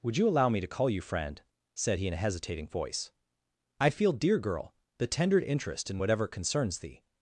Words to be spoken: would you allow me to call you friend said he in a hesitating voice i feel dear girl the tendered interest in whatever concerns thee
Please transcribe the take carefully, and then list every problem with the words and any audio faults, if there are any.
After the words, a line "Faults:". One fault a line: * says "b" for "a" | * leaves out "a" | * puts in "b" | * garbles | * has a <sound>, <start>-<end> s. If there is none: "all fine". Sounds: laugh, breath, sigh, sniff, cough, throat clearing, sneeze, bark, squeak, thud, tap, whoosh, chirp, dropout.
would you allow me to call you friend said he in a hesitating voice i feel dear girl the tendered interest in whatever concerns thee
Faults:
all fine